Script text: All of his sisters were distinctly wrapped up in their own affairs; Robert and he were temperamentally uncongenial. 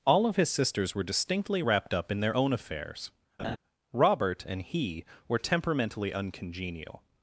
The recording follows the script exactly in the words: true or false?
true